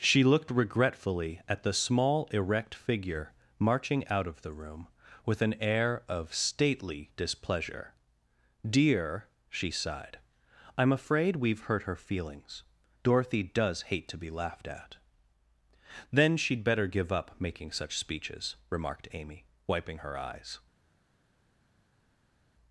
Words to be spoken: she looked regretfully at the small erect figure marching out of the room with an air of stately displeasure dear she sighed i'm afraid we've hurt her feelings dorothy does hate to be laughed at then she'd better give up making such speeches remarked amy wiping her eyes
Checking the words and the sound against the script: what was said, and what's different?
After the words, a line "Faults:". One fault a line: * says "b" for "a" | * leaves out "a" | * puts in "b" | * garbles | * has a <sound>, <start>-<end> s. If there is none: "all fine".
she looked regretfully at the small erect figure marching out of the room with an air of stately displeasure dear she sighed i'm afraid we've hurt her feelings dorothy does hate to be laughed at then she'd better give up making such speeches remarked amy wiping her eyes
Faults:
all fine